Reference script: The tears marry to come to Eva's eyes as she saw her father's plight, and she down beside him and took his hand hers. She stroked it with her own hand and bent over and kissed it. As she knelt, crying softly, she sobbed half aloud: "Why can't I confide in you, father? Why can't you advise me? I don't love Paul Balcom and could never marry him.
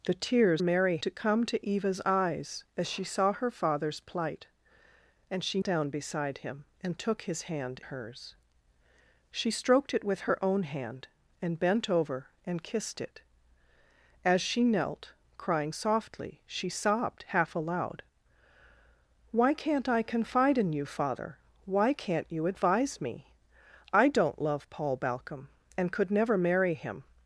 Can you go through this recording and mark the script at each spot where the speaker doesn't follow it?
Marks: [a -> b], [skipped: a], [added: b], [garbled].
The tears marry to come to Eva's eyes as she saw her father's plight, and she down beside him and took his hand hers. She stroked it with her own hand and bent over and kissed it. As she knelt, crying softly, she sobbed half aloud: "Why can't I confide in you, father? Why can't you advise me? I don't love Paul Balcom and could never marry him.